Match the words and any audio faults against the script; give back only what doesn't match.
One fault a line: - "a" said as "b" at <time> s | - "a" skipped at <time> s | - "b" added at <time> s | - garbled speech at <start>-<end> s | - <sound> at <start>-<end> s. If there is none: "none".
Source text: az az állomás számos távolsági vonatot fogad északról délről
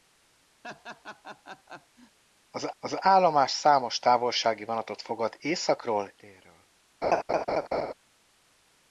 - laugh at 0.6-2.2 s
- laugh at 7.0-7.9 s